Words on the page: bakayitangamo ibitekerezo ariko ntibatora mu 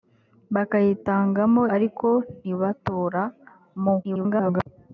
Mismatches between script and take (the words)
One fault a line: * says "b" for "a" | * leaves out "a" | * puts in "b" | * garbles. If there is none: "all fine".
* leaves out "ibitekerezo"
* garbles